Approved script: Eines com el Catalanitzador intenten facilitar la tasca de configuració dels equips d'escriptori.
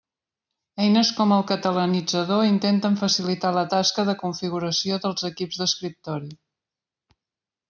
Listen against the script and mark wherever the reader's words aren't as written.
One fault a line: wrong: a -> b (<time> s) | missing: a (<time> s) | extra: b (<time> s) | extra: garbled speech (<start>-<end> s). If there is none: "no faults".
no faults